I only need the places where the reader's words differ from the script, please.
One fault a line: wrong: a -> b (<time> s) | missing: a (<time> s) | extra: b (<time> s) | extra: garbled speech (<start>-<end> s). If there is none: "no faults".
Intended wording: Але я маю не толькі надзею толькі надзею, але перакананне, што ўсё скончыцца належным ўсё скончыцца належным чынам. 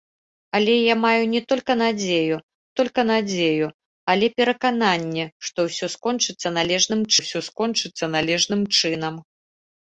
no faults